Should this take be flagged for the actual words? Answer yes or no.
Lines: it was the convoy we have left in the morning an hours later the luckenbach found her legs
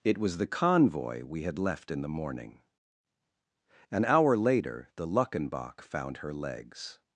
yes